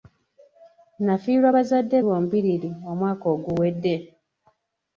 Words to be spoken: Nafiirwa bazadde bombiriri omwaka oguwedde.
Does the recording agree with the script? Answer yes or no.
yes